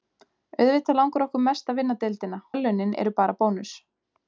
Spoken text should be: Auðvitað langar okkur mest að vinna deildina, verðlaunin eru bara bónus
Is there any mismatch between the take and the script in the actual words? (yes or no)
no